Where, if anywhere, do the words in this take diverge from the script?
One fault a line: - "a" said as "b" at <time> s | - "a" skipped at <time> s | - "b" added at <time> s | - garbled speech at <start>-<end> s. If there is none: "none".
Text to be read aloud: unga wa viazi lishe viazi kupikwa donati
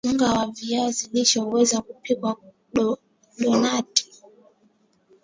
- "viazi" said as "huweza" at 1.4 s